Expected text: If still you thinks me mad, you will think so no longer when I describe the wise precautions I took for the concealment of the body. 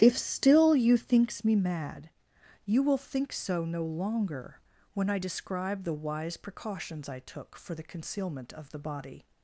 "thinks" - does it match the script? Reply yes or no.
yes